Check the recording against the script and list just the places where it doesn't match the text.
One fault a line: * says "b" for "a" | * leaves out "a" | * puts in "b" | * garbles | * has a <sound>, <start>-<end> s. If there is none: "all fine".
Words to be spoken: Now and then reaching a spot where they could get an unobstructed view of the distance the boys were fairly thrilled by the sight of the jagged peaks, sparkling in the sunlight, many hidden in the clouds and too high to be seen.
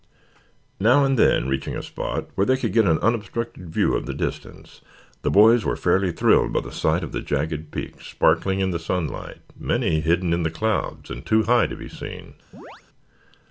* has a chirp, 12.5-12.8 s